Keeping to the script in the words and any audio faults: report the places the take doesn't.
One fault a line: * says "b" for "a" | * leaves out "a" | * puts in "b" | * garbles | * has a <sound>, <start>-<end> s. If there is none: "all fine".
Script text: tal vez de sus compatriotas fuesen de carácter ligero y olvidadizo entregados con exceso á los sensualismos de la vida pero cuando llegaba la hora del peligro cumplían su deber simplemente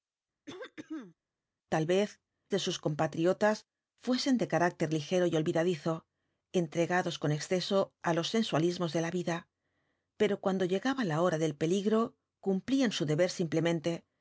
* has a throat clearing, 0.5-1.1 s